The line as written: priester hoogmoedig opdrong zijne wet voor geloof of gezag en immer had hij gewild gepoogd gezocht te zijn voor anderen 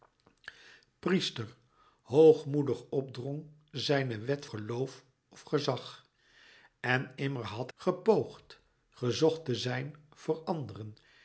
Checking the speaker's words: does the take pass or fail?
fail